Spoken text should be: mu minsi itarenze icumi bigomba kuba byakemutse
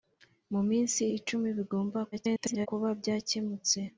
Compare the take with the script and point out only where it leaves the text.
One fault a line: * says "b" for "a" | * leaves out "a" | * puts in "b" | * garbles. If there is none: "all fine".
* leaves out "itarenze"
* garbles